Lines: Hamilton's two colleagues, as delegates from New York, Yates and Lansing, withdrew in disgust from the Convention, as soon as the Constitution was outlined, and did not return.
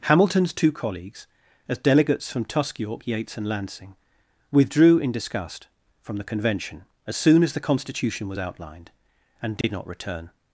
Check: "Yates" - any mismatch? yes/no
no